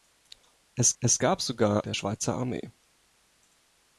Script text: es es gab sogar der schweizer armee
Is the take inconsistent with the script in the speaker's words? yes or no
no